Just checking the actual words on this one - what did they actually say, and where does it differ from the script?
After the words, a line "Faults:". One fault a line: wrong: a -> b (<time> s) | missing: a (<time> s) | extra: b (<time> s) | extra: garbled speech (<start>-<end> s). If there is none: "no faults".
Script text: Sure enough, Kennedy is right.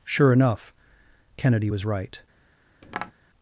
Sure enough, Kennedy was right.
Faults:
wrong: is -> was (1.6 s)